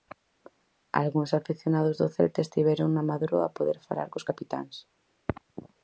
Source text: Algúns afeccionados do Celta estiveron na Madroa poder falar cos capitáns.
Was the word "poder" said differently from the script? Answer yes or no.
no